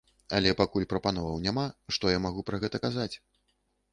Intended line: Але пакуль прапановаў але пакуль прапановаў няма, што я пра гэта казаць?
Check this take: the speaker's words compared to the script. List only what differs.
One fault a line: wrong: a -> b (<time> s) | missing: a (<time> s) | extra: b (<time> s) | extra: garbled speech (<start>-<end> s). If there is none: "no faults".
missing: але пакуль прапановаў (1.4 s)
extra: магу (2.3 s)